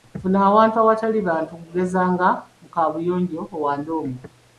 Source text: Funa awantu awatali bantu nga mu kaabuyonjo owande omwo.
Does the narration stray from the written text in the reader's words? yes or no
yes